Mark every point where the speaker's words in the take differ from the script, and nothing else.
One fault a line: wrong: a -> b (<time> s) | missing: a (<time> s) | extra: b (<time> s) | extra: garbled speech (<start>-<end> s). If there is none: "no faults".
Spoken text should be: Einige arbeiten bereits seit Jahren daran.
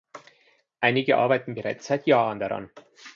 no faults